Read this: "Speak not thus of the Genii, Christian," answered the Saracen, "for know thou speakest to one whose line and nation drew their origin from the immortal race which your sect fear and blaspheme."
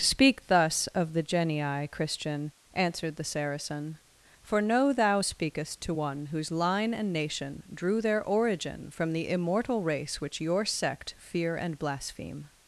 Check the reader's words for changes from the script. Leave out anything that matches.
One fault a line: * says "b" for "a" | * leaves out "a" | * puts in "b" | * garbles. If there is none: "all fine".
* leaves out "not"